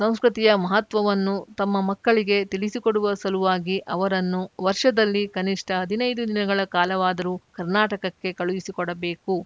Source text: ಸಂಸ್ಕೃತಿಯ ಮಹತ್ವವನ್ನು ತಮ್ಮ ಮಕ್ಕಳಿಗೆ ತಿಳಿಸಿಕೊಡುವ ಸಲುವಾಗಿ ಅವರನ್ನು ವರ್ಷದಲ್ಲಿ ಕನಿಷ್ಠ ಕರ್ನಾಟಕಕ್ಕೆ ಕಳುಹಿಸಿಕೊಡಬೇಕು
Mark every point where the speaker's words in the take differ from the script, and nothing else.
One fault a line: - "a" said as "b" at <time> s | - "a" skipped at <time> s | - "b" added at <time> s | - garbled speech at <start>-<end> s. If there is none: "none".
- "ಹದಿನೈದು ದಿನಗಳ ಕಾಲವಾದರೂ" added at 5.8 s